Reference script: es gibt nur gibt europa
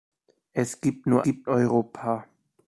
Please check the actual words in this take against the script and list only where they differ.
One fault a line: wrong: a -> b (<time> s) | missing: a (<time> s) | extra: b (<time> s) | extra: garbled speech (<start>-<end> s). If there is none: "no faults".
no faults